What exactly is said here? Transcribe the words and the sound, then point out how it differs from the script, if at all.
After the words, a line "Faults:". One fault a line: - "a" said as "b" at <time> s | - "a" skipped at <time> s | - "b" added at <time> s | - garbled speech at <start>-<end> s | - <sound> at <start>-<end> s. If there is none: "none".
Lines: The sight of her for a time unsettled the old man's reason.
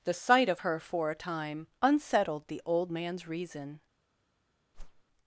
The sight of her for a time unsettled the old man's reason.
Faults:
- whoosh at 4.7-5.0 s